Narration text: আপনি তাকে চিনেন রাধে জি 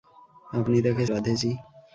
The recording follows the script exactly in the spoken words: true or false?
false